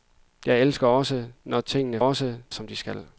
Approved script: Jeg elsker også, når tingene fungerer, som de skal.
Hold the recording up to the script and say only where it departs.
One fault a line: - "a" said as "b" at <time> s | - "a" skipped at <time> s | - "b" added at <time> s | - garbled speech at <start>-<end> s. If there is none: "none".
- "fungerer" said as "også" at 2.0 s